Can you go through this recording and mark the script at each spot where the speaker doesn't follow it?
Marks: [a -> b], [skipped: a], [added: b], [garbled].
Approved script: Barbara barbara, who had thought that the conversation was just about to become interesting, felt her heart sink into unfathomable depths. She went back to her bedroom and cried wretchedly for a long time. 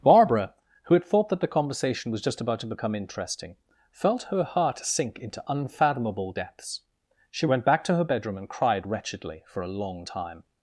Barbara [skipped: barbara,] who had thought that the conversation was just about to become interesting, felt her heart sink into unfathomable depths. She went back to her bedroom and cried wretchedly for a long time.